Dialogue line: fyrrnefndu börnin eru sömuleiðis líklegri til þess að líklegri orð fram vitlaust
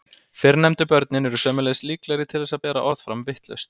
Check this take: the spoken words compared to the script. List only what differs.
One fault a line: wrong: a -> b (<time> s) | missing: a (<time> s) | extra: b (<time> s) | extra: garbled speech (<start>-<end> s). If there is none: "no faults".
wrong: líklegri -> bera (2.7 s)